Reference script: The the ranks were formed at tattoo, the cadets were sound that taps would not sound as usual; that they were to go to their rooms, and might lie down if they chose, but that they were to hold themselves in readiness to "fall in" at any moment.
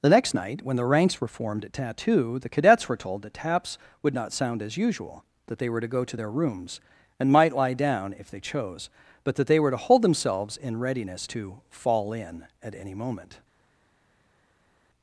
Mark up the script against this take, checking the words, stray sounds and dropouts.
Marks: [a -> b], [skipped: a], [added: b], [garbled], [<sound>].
The [added: next night when] the ranks were formed at tattoo, the cadets were [sound -> told] that taps would not sound as usual; that they were to go to their rooms, and might lie down if they chose, but that they were to hold themselves in readiness to "fall in" at any moment.